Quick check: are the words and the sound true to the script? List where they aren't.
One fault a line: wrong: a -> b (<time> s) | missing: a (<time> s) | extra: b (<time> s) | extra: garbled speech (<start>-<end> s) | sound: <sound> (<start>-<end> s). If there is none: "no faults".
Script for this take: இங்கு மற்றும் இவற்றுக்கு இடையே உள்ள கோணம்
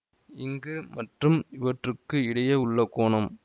no faults